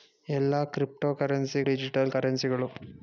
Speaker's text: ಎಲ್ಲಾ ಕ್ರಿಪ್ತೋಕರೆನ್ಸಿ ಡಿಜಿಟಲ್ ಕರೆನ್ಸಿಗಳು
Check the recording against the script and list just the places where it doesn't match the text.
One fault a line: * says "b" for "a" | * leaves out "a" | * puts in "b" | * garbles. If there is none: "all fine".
all fine